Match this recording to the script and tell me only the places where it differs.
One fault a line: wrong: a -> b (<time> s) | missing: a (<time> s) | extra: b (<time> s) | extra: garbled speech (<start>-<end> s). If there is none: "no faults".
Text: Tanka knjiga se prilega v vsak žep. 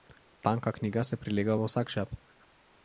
no faults